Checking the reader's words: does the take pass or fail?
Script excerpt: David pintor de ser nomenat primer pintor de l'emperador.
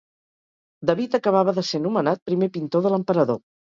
fail